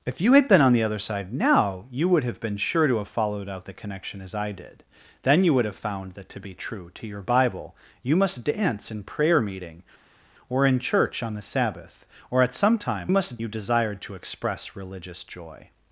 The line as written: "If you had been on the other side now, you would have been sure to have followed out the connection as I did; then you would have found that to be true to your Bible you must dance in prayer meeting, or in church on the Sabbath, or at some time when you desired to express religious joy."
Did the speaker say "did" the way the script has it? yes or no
yes